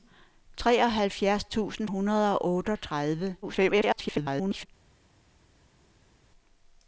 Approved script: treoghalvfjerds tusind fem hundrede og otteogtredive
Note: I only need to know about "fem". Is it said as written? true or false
false